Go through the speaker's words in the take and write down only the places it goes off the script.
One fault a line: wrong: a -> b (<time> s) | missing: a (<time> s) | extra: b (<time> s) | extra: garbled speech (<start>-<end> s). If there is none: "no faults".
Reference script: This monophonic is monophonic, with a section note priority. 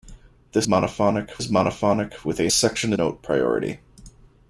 no faults